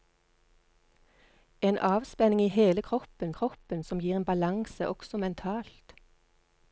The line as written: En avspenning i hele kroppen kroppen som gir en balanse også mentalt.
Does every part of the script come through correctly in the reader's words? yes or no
yes